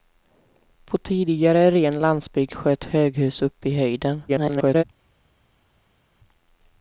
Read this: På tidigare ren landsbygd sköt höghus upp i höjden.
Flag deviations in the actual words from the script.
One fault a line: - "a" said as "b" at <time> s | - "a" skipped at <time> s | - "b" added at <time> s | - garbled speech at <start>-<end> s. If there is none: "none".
- garbled speech at 4.3-4.8 s